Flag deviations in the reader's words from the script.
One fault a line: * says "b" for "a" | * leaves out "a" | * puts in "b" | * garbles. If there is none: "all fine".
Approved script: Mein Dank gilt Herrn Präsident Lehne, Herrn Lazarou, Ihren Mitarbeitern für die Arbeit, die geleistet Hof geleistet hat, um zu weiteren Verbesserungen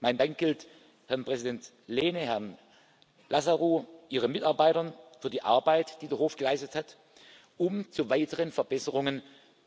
* says "der" for "geleistet"